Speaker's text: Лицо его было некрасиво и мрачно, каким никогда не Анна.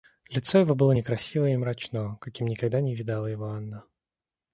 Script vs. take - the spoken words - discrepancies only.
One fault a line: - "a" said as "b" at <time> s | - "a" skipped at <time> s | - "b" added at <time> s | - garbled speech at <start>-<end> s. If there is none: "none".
- "видала его" added at 2.9 s